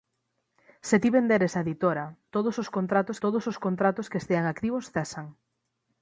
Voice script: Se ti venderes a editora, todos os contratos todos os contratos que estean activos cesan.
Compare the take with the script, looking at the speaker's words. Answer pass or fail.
pass